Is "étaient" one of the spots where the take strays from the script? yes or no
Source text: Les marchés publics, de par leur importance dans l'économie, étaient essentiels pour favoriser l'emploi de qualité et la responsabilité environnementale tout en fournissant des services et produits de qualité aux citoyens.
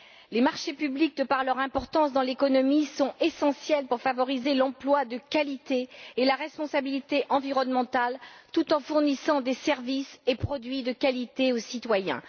yes